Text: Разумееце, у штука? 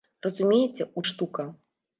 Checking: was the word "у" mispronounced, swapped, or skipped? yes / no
no